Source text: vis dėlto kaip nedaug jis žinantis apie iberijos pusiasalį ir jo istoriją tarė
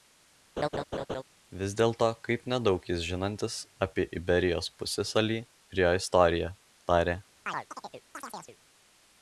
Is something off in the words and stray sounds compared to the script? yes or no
yes